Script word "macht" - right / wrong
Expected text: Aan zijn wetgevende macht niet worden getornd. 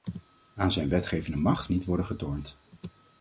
right